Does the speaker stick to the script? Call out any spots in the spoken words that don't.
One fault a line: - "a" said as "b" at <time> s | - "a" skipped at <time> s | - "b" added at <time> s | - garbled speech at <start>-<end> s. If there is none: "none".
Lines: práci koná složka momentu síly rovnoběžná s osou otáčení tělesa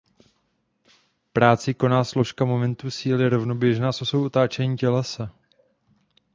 none